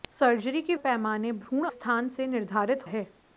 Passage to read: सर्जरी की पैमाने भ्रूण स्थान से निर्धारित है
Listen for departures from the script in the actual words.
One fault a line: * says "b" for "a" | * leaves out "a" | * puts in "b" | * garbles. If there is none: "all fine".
all fine